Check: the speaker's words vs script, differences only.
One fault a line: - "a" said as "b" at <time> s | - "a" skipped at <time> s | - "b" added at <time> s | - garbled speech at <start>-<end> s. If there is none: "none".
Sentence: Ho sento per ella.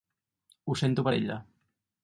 none